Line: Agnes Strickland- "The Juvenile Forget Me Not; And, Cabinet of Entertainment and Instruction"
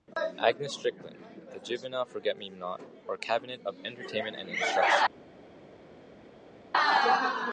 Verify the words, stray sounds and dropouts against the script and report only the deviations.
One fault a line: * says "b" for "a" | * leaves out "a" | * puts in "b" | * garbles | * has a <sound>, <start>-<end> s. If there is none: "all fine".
* says "Or" for "And"